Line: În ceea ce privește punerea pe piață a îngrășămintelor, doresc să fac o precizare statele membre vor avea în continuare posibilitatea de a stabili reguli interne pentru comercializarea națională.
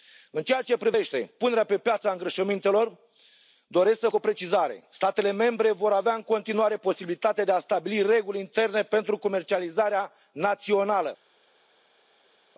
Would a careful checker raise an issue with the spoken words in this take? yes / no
yes